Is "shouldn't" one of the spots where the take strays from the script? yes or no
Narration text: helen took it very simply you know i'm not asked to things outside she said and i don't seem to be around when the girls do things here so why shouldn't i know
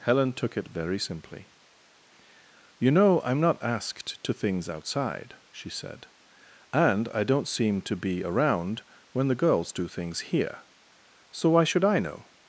yes